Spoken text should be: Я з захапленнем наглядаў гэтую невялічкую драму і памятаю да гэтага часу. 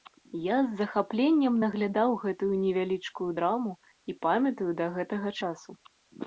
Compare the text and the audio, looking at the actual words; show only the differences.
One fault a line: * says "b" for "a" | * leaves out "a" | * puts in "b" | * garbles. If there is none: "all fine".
all fine